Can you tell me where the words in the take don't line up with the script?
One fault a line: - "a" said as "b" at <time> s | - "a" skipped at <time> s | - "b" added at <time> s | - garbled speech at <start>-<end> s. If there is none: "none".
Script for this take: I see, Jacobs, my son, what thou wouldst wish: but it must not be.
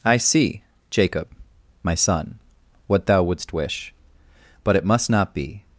- "Jacobs" said as "Jacob" at 0.9 s